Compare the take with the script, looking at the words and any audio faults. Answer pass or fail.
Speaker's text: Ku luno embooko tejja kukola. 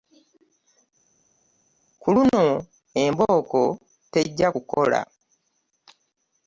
pass